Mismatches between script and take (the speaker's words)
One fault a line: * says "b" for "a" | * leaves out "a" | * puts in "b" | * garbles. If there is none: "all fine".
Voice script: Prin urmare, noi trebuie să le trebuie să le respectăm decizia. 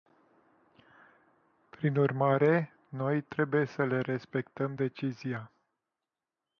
* leaves out "trebuie să le"